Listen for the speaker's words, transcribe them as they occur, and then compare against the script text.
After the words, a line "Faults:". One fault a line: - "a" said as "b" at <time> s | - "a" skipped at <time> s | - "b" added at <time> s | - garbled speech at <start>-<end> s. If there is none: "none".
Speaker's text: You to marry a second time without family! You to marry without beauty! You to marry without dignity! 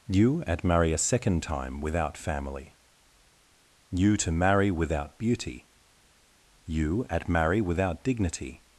You at marry a second time without family! You to marry without beauty! You at marry without dignity!
Faults:
- "to" said as "at" at 0.5 s
- "to" said as "at" at 7.1 s